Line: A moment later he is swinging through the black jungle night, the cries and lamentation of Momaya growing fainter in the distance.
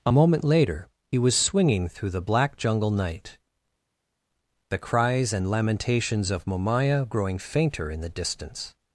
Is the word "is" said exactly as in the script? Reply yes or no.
no